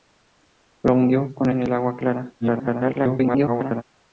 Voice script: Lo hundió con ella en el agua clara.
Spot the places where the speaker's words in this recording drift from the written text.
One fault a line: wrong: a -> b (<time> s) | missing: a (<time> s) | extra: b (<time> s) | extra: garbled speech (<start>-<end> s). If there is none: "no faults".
missing: ella (1.5 s)
extra: garbled speech (2.4-3.8 s)